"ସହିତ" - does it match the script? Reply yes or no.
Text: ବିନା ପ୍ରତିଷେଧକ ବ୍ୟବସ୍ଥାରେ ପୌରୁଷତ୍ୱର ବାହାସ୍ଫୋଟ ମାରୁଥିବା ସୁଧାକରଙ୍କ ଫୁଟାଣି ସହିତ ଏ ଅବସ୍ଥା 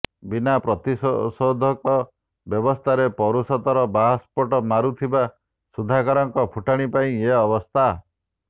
no